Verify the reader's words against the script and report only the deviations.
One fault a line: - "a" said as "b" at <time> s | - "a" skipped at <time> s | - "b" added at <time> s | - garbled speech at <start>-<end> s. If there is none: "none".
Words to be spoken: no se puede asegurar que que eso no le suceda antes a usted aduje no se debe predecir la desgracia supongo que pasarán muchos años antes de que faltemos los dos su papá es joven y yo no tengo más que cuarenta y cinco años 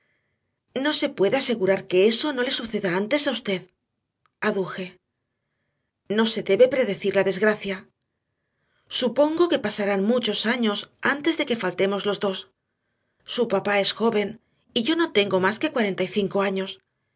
- "que" skipped at 2.0 s